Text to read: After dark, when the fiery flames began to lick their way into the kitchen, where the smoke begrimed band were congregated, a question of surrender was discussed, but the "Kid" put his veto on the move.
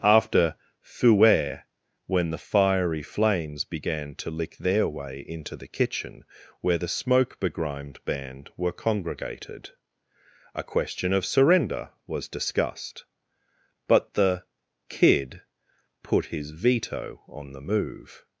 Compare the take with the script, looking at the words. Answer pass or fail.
fail